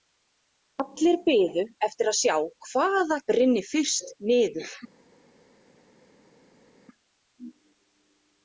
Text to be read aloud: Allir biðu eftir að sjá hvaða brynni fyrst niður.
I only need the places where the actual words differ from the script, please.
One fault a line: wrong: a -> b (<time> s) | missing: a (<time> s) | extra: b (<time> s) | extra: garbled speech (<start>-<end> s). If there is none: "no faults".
no faults